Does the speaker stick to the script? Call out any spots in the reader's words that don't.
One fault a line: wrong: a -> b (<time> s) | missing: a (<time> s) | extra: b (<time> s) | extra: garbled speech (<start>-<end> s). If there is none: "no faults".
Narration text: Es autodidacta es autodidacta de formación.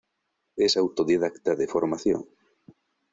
missing: es autodidacta (1.6 s)